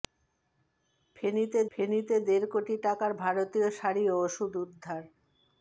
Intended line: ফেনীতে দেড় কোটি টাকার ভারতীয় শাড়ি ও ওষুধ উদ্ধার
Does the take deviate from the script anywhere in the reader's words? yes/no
yes